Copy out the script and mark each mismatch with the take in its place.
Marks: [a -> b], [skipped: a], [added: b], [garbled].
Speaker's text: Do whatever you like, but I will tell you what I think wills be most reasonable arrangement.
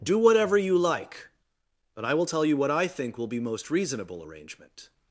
Do whatever you like, but I will tell you what I think [wills -> will] be most reasonable arrangement.